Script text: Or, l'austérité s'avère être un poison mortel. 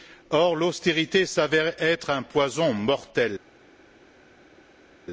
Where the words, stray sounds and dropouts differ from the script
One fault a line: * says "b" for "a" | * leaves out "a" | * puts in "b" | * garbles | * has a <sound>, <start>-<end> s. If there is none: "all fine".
all fine